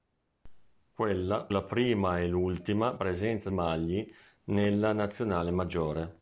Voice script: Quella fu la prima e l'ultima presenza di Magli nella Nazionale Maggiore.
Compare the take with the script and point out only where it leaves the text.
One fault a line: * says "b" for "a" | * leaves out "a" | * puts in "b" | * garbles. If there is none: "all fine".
* leaves out "fu"
* leaves out "di"